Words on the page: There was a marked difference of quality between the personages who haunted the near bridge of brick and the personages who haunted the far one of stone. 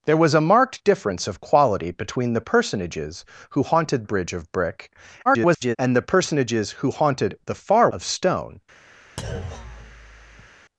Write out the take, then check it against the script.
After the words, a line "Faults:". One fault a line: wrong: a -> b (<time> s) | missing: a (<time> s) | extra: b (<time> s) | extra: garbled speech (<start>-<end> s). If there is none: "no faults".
There was a marked difference of quality between the personages who haunted bridge of brick [garbled] and the personages who haunted the far of stone.
Faults:
missing: the near (4.0 s)
extra: garbled speech (5.3-5.8 s)
missing: one (7.9 s)